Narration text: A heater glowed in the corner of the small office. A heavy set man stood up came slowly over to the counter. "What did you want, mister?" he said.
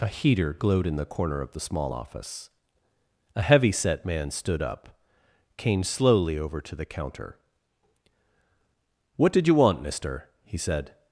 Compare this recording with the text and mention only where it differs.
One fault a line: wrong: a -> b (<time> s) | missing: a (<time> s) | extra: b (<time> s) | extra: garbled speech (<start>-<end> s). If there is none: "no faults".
no faults